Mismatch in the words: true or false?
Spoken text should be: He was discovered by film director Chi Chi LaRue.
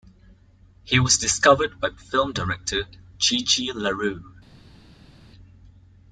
false